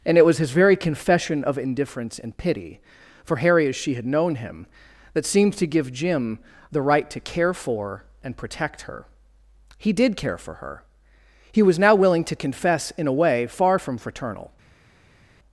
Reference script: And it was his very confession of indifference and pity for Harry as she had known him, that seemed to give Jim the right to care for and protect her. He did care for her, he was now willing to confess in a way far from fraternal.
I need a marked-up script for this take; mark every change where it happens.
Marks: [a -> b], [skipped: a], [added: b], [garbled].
And it was his very confession of indifference and pity for Harry as she had known him, that seemed to give Jim the right to care for and protect her. He did care for her, he was now willing to confess in a way far from fraternal.